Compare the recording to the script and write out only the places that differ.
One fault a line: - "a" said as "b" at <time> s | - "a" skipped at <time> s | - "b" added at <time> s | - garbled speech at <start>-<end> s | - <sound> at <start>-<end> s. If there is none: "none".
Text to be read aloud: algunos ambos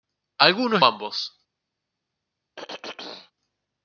- throat clearing at 2.6-3.3 s